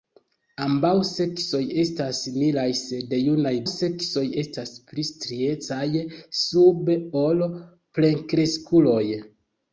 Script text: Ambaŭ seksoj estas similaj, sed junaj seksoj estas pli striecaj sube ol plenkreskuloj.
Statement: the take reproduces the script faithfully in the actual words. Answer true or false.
true